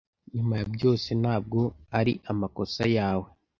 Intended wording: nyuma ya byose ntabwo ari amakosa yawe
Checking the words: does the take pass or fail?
pass